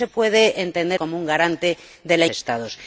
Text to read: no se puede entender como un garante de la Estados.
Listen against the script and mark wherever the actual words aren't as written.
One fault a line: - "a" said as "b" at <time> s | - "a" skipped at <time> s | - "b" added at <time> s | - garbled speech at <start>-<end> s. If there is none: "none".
none